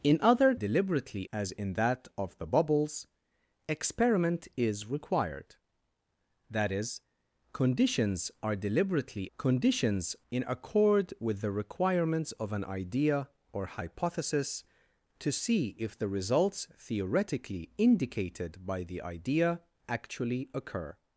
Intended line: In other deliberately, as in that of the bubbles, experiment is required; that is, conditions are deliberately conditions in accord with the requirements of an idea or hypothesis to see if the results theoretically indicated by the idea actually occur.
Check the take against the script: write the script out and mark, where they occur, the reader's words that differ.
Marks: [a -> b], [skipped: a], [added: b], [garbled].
In other deliberately, as in that of the bubbles, experiment is required; that is, conditions are deliberately conditions in accord with the requirements of an idea or hypothesis to see if the results theoretically indicated by the idea actually occur.